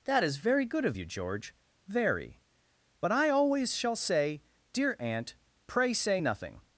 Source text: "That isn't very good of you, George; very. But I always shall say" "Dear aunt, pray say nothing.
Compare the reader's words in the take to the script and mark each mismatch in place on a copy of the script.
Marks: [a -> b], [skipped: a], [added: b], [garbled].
"That [isn't -> is] very good of you, George; very. But I always shall say" "Dear aunt, pray say nothing.